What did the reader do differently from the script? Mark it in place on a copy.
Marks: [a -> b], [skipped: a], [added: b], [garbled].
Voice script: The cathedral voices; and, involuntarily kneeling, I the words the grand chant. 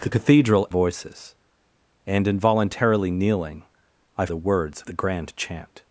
The cathedral voices; and, involuntarily kneeling, I the words the grand chant.